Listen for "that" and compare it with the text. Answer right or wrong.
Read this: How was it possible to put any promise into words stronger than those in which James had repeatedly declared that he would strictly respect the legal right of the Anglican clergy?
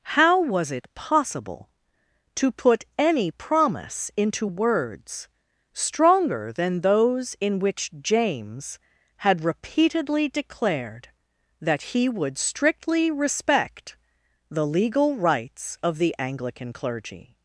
right